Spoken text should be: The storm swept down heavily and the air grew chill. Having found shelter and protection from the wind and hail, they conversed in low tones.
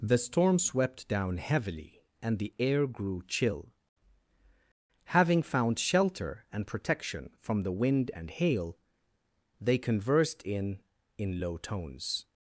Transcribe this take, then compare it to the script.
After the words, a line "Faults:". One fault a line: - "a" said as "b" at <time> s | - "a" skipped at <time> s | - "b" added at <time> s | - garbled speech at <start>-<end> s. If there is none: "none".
The storm swept down heavily and the air grew chill. Having found shelter and protection from the wind and hail, they conversed in in low tones.
Faults:
- "in" added at 11.2 s